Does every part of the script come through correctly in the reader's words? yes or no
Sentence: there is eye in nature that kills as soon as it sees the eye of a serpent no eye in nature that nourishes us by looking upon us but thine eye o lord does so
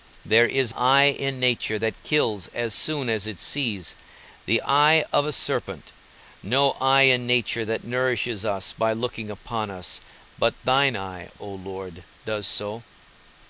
yes